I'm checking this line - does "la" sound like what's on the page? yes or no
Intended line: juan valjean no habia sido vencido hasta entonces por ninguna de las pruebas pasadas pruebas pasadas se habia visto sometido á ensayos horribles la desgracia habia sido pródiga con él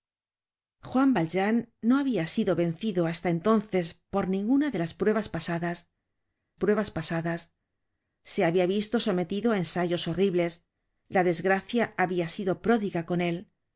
yes